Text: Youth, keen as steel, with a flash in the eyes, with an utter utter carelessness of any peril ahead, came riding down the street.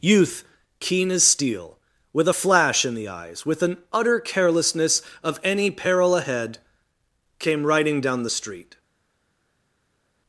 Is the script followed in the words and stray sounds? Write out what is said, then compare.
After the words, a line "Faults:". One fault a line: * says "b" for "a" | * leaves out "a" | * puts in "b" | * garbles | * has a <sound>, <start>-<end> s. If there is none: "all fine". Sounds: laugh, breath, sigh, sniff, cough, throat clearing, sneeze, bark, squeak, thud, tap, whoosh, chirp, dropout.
Youth, keen as steel, with a flash in the eyes, with an utter carelessness of any peril ahead, came riding down the street.
Faults:
* leaves out "utter"